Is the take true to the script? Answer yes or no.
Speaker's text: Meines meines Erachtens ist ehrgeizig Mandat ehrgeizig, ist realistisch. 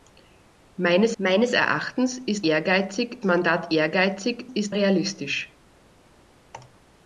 yes